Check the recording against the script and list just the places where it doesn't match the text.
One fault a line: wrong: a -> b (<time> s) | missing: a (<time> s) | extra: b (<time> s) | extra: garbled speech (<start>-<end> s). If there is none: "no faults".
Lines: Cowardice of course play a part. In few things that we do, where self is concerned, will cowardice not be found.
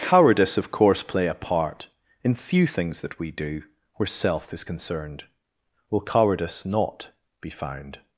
no faults